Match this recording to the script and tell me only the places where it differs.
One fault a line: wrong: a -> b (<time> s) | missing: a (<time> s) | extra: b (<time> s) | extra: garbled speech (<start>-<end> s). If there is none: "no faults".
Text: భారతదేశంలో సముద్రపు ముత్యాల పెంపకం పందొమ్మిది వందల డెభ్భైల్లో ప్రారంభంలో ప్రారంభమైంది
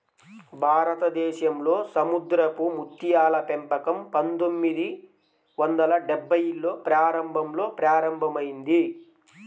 no faults